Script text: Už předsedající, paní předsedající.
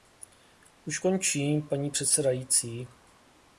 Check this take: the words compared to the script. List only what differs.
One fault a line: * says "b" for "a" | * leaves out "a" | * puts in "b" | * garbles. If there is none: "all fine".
* says "končím" for "předsedající"